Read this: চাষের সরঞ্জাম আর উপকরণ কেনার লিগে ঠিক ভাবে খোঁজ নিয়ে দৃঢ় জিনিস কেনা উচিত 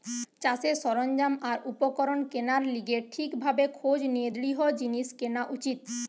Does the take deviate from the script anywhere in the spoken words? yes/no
no